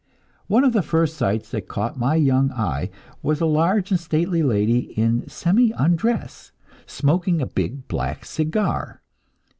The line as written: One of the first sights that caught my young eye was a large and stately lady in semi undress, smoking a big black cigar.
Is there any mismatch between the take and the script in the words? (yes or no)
no